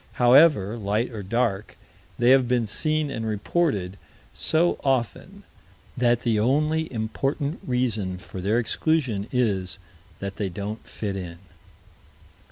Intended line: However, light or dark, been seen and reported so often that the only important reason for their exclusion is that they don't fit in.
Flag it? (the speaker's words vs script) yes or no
yes